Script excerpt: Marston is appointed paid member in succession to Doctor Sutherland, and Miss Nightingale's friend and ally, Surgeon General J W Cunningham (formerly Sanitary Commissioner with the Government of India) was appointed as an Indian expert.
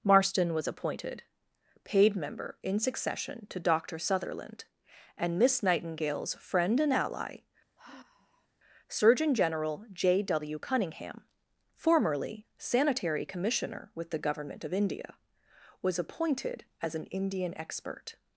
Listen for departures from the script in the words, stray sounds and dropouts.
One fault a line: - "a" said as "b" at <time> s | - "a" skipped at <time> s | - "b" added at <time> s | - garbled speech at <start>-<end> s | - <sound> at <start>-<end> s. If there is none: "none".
- "is" said as "was" at 0.6 s
- sigh at 7.8-8.5 s